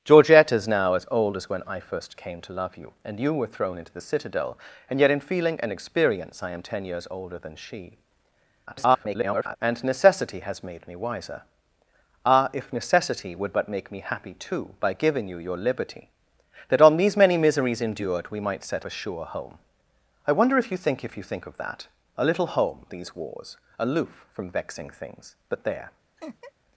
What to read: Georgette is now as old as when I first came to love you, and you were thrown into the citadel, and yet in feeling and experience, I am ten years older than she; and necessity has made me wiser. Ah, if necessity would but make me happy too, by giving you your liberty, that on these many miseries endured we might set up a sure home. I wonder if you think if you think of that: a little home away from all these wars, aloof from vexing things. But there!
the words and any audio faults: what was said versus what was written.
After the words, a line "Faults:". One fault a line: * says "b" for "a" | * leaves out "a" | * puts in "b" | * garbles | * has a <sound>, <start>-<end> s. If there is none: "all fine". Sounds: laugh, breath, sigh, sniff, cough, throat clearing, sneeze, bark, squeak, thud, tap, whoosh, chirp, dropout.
Georgette is now as old as when I first came to love you, and you were thrown into the citadel, and yet in feeling and experience, I am ten years older than she; [garbled] and necessity has made me wiser. Ah, if necessity would but make me happy too, by giving you your liberty, that on these many miseries endured we might set a sure home. I wonder if you think if you think of that: a little home these wars, aloof from vexing things. But there!
Faults:
* garbles
* leaves out "up"
* leaves out "away from all"
* has a laugh, 26.2-26.5 s